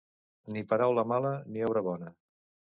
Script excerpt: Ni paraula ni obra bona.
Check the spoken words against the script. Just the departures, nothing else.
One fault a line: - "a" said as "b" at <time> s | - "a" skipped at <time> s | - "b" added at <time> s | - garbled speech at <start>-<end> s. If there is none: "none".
- "mala" added at 1.1 s